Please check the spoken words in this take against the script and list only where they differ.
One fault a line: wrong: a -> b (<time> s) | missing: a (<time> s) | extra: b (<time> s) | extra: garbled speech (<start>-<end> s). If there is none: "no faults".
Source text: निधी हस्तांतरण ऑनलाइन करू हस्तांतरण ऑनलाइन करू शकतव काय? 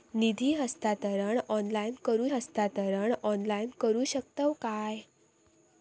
no faults